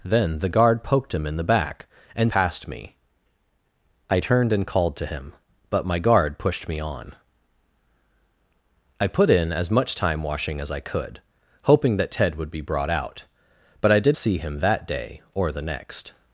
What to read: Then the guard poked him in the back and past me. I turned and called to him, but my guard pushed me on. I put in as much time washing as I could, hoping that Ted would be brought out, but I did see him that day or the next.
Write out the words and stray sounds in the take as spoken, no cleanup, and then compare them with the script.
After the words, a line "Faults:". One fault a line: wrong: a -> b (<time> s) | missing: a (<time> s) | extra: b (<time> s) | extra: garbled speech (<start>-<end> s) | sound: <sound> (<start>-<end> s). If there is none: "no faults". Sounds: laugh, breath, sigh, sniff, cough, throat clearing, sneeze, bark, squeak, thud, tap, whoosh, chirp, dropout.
Then the guard poked him in the back and past me. I turned and called to him, but my guard pushed me on. I put in as much time washing as I could, hoping that Ted would be brought out, but I did see him that day or the next.
Faults:
no faults